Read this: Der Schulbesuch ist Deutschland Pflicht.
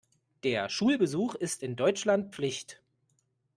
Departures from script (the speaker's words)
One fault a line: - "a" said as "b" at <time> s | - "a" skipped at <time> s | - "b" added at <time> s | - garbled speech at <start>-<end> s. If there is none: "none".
- "in" added at 1.6 s